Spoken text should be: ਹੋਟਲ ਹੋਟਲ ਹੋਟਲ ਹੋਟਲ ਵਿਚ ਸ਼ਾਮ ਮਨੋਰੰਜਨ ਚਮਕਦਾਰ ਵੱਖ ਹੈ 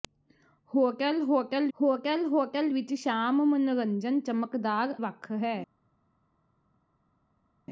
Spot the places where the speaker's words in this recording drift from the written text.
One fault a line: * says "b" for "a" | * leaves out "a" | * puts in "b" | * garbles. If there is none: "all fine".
all fine